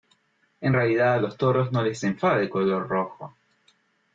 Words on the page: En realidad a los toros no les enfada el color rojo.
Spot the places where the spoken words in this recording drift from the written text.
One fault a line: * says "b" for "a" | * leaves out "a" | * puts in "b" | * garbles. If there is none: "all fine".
all fine